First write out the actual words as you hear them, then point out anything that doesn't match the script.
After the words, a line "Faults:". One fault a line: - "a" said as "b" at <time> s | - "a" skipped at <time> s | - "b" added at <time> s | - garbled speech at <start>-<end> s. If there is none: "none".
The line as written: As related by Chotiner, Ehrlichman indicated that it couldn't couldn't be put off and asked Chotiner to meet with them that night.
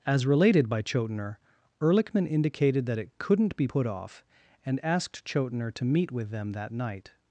As related by Chotiner, Ehrlichman indicated that it couldn't be put off and asked Chotiner to meet with them that night.
Faults:
- "couldn't" skipped at 3.5 s